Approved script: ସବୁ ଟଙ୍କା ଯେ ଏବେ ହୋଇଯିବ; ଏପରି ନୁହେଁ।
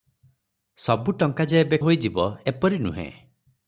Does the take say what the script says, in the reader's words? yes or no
yes